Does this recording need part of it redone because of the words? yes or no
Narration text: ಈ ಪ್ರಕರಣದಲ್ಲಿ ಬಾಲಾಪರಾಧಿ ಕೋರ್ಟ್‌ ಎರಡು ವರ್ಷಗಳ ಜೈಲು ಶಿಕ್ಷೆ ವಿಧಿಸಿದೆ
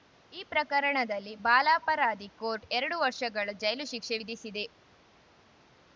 no